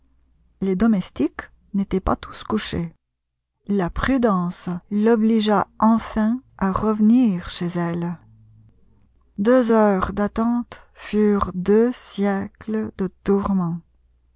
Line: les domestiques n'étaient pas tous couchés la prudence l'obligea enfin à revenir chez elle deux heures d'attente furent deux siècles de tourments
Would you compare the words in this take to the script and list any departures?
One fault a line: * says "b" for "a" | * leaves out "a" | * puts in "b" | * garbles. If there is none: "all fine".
all fine